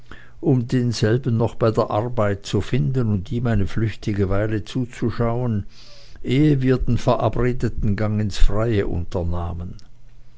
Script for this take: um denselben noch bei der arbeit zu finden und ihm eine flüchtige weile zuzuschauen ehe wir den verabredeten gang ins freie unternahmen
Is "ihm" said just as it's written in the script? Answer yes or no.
yes